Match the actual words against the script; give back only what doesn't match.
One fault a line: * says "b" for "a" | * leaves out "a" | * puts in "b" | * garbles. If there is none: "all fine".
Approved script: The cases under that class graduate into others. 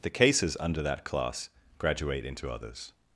all fine